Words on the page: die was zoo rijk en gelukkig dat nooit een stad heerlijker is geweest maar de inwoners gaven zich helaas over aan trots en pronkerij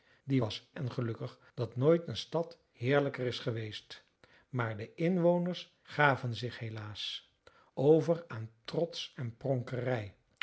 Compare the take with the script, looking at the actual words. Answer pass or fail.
fail